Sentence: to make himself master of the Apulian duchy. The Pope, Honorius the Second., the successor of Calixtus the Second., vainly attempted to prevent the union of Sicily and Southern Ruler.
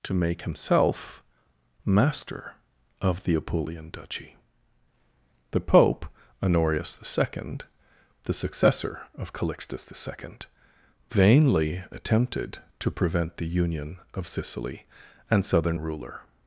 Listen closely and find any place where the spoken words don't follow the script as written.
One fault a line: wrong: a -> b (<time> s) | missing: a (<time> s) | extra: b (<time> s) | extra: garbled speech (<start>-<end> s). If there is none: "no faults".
no faults